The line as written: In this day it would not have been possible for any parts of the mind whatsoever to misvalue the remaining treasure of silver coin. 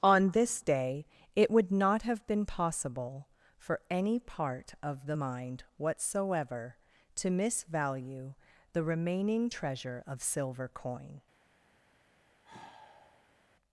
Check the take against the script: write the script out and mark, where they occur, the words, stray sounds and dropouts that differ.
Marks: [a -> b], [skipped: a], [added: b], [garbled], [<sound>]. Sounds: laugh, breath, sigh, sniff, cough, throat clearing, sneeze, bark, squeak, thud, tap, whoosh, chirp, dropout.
[In -> On] this day it would not have been possible for any [parts -> part] of the mind whatsoever to misvalue the remaining treasure of silver coin. [sigh]